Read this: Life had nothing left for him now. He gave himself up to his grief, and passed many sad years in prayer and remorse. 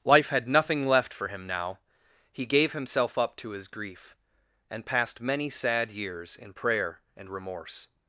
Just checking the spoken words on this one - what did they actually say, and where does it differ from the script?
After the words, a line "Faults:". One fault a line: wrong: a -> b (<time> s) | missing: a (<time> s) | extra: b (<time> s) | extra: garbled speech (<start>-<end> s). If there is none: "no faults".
Life had nothing left for him now. He gave himself up to his grief, and passed many sad years in prayer and remorse.
Faults:
no faults